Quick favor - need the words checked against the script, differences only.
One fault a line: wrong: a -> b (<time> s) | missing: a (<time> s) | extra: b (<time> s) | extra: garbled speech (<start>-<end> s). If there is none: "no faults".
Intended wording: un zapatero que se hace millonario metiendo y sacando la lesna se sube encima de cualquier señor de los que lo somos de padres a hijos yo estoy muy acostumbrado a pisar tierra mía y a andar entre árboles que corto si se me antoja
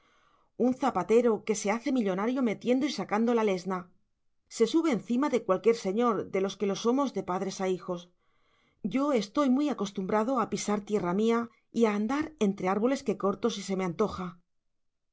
no faults